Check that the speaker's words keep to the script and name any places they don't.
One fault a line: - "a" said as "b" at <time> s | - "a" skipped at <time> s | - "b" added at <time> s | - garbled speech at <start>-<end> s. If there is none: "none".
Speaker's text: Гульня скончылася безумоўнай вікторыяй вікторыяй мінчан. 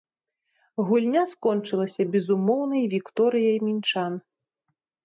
- "вікторыяй" skipped at 3.6 s